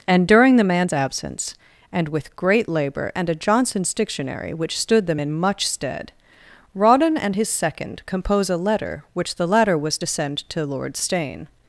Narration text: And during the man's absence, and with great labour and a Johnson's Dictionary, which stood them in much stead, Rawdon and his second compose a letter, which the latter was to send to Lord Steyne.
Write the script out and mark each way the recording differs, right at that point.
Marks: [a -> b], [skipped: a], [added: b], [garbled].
And during the man's absence, and with great labour and a Johnson's Dictionary, which stood them in much stead, Rawdon and his second compose a letter, which the latter was to send to Lord Steyne.